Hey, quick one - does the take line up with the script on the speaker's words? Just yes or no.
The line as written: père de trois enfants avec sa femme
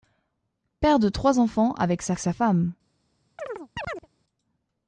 no